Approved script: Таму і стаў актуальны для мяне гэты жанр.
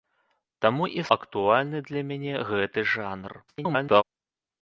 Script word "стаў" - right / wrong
wrong